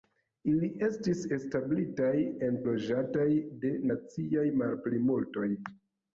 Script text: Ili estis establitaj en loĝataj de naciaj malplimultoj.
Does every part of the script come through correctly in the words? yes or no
yes